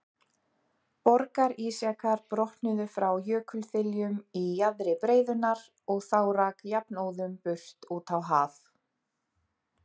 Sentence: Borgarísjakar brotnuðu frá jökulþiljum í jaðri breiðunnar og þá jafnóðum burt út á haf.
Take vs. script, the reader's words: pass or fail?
fail